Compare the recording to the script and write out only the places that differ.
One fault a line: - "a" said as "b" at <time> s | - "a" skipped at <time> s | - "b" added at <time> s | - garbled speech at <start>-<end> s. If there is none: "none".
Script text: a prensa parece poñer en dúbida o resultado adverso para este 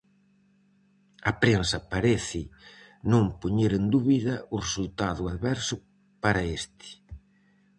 - "non" added at 3.1 s